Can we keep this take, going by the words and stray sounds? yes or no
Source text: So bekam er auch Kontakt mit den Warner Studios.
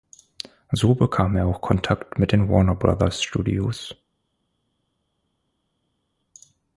no